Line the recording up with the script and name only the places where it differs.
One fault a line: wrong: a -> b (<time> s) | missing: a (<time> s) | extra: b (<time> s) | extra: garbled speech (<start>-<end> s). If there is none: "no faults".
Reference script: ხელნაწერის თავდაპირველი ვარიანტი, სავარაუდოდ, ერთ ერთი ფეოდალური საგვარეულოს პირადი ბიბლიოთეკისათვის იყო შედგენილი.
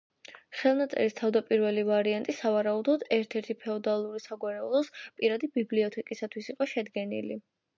no faults